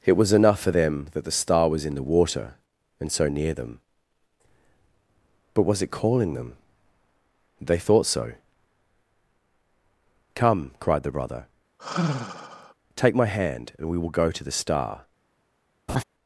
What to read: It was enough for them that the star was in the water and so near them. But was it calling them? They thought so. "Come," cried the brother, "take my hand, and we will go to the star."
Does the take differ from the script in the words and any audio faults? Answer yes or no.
yes